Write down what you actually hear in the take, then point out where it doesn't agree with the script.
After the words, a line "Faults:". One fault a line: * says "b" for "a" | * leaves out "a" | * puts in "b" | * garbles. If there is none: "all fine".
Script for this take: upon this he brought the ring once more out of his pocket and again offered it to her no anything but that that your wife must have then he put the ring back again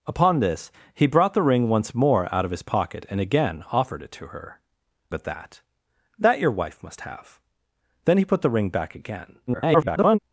upon this he brought the ring once more out of his pocket and again offered it to her but that that your wife must have then he put the ring back again [garbled]
Faults:
* leaves out "no anything"
* garbles